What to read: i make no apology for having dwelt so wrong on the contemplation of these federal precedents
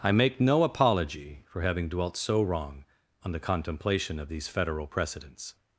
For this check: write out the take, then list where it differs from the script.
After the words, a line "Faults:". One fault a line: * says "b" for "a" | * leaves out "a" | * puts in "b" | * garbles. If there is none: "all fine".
i make no apology for having dwelt so wrong on the contemplation of these federal precedents
Faults:
all fine